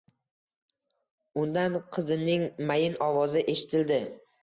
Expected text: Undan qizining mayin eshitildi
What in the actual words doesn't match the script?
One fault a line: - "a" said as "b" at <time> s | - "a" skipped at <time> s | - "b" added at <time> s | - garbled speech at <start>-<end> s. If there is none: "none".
- "ovozi" added at 3.1 s